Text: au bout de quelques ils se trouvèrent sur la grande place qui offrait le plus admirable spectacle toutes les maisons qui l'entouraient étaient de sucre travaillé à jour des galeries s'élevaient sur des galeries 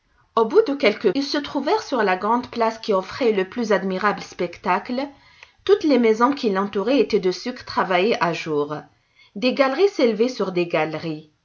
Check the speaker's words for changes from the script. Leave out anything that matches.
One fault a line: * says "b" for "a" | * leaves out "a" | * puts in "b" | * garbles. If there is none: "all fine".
all fine